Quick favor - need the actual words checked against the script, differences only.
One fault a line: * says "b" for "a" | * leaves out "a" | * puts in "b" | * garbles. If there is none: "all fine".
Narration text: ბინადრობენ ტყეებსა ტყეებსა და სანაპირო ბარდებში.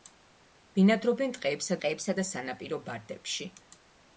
all fine